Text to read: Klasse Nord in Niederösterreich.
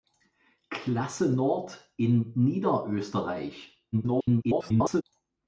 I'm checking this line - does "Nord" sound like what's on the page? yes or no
yes